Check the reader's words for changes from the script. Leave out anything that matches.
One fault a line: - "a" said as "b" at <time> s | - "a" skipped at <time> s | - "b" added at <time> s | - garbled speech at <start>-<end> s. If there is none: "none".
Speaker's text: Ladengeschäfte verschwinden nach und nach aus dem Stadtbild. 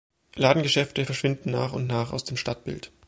none